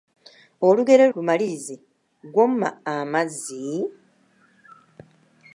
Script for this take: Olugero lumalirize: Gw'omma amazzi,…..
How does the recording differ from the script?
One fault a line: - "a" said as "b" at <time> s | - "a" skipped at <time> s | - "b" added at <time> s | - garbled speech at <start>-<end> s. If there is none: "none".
none